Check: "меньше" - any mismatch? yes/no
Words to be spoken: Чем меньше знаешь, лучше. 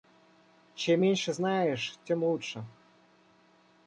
no